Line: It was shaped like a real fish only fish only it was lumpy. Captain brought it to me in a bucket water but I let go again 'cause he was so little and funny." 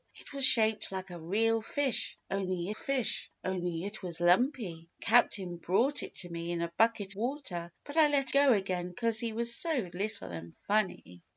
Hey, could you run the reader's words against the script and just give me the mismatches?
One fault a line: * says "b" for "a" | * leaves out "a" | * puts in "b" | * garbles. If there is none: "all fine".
all fine